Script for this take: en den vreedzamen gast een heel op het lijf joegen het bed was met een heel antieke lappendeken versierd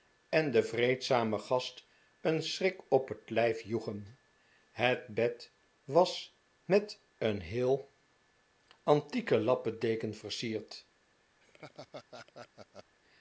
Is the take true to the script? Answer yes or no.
no